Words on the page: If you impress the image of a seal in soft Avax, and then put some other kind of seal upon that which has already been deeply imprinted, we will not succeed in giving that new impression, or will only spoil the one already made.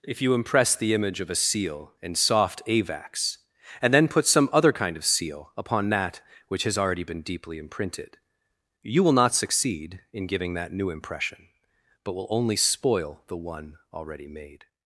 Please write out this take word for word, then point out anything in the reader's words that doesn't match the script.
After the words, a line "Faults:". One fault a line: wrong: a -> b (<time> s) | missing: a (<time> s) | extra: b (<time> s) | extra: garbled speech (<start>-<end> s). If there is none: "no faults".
If you impress the image of a seal in soft Avax, and then put some other kind of seal upon that which has already been deeply imprinted, you will not succeed in giving that new impression, but will only spoil the one already made.
Faults:
wrong: we -> you (8.8 s)
wrong: or -> but (12.0 s)